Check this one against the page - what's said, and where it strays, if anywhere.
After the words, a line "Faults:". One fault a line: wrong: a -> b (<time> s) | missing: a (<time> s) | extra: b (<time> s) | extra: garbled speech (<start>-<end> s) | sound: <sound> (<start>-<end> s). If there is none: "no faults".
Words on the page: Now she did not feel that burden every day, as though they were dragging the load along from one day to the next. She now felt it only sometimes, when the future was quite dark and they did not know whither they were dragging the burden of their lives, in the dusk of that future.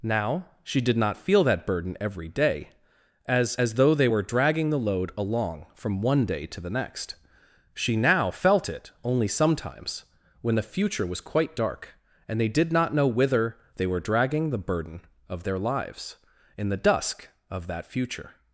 Now she did not feel that burden every day, as as though they were dragging the load along from one day to the next. She now felt it only sometimes, when the future was quite dark and they did not know whither they were dragging the burden of their lives, in the dusk of that future.
Faults:
extra: as (3.6 s)